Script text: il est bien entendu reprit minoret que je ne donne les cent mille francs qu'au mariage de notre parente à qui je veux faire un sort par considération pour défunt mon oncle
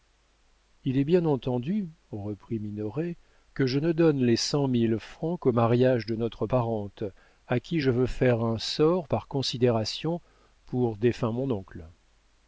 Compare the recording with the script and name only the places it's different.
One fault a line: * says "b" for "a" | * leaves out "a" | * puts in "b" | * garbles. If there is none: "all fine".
all fine